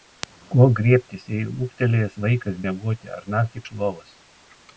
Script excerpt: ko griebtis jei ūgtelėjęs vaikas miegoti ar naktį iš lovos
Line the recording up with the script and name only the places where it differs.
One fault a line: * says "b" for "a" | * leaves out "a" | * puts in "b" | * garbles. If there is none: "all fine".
all fine